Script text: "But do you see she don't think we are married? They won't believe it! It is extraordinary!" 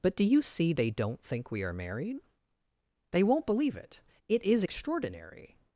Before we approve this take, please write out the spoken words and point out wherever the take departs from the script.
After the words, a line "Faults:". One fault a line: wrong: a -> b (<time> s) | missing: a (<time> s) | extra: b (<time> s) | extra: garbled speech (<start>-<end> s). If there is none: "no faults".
"But do you see they don't think we are married? They won't believe it! It is extraordinary!"
Faults:
wrong: she -> they (0.7 s)